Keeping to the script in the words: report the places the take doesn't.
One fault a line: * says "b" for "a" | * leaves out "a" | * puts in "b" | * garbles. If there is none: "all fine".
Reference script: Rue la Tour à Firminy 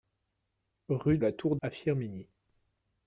all fine